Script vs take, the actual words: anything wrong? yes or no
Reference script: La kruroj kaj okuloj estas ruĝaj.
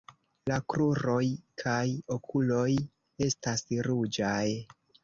no